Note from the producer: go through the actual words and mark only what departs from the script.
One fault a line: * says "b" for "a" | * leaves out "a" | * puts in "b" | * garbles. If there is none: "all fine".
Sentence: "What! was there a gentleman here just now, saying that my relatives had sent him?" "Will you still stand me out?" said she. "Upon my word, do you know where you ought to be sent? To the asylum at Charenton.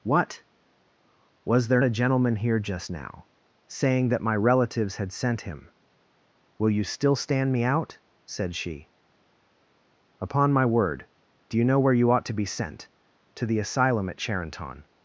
all fine